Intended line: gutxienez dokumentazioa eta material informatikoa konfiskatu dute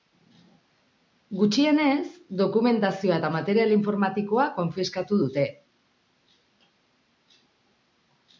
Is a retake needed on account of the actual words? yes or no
no